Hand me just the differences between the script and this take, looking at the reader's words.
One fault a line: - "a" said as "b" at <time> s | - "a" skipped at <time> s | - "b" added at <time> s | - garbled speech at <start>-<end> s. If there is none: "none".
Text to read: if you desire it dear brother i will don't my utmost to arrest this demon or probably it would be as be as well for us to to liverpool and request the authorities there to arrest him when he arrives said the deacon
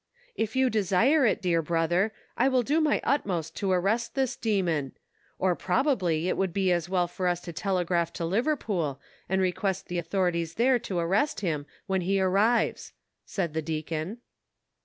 - "don't" said as "do" at 2.6 s
- "be as" skipped at 6.9 s
- "telegraph" added at 7.5 s